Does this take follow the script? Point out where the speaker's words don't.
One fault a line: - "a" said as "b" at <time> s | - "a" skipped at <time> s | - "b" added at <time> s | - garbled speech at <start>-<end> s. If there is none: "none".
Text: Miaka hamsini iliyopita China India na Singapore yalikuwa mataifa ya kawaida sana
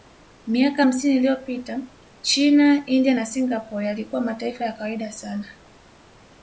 none